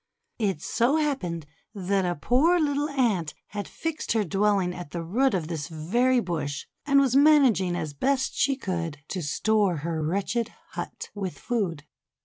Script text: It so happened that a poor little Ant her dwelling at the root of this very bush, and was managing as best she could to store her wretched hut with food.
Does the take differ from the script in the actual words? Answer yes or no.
yes